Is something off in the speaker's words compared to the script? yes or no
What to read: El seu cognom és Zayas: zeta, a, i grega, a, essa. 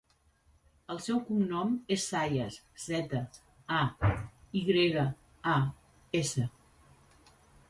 no